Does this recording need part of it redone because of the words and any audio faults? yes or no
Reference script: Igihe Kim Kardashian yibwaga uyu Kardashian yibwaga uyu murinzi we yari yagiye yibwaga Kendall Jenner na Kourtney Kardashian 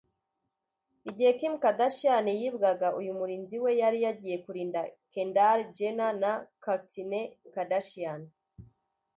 yes